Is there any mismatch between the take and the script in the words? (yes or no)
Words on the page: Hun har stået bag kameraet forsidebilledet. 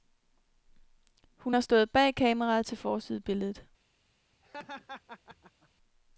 yes